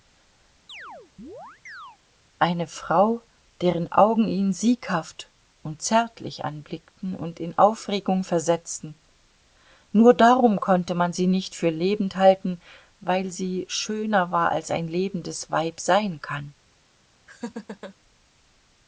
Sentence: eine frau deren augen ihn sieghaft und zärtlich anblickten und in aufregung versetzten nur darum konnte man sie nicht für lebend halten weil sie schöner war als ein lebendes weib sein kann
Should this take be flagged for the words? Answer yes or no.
no